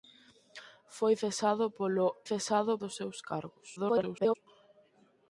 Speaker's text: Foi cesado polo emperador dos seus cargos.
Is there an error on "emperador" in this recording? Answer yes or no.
yes